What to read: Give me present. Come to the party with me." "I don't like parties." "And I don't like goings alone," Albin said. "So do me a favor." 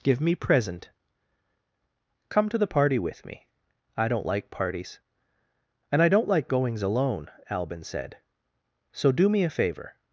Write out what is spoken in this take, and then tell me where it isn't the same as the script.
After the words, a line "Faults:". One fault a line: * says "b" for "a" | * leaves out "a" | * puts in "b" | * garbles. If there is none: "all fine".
Give me present. Come to the party with me." "I don't like parties." "And I don't like goings alone," Albin said. "So do me a favor."
Faults:
all fine